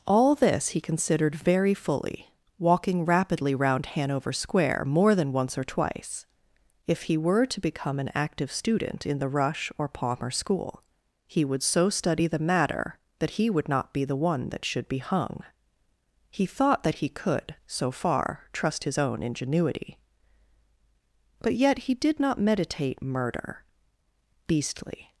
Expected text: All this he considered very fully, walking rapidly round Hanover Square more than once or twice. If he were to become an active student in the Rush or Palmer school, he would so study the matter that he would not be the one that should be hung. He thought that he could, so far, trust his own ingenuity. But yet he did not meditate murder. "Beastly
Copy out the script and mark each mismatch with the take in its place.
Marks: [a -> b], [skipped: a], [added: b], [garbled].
All this he considered very fully, walking rapidly round Hanover Square more than once or twice. If he were to become an active student in the Rush or Palmer school, he would so study the matter that he would not be the one that should be hung. He thought that he could, so far, trust his own ingenuity. But yet he did not meditate murder. "Beastly